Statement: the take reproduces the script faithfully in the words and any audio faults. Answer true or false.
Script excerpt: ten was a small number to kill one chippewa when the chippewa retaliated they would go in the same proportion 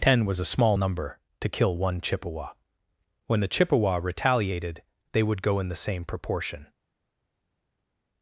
true